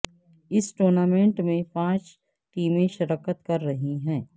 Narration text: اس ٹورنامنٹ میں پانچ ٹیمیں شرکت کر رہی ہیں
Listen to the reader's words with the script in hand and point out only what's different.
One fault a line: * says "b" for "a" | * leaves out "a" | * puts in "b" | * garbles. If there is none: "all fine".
all fine